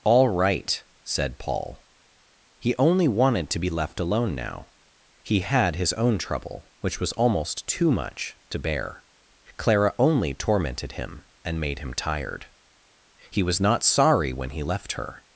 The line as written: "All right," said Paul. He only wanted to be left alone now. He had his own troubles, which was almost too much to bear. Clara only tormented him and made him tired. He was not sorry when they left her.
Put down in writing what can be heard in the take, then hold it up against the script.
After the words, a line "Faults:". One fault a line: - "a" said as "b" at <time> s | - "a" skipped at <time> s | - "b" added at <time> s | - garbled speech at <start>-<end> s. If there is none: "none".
"All right," said Paul. He only wanted to be left alone now. He had his own trouble, which was almost too much to bear. Clara only tormented him and made him tired. He was not sorry when he left her.
Faults:
- "troubles" said as "trouble" at 6.2 s
- "they" said as "he" at 14.5 s